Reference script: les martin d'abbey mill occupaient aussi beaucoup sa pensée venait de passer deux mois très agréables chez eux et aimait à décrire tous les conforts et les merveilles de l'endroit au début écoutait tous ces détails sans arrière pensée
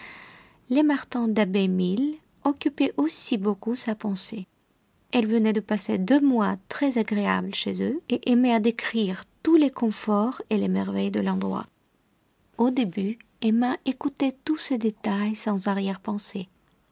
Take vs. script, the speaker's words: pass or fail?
fail